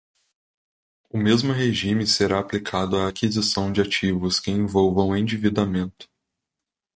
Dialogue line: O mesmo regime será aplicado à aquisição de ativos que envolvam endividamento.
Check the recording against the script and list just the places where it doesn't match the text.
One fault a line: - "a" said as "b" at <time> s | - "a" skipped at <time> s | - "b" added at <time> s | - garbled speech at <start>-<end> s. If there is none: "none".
none